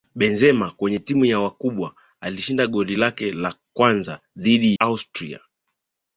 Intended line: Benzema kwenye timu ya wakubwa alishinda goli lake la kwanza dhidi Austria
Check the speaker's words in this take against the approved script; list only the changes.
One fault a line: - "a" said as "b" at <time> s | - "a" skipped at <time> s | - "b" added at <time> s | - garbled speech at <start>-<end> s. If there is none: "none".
none